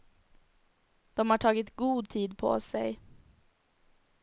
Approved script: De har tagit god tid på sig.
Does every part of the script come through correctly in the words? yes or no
yes